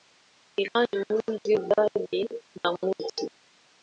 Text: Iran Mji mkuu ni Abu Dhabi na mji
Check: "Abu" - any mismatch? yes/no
yes